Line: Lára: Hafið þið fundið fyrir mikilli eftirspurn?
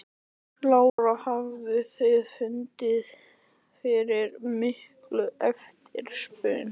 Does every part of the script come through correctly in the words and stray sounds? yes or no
no